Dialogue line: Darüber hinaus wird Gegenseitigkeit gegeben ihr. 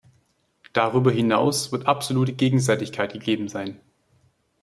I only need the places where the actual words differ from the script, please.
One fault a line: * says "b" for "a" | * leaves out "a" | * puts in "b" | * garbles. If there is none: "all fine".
* puts in "absolute"
* says "sein" for "ihr"